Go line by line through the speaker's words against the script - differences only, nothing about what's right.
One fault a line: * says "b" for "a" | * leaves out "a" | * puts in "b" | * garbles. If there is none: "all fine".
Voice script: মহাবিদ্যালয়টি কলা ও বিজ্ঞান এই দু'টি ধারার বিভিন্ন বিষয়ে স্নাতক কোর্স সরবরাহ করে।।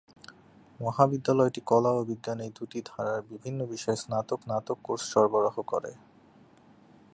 * puts in "স্নাতক"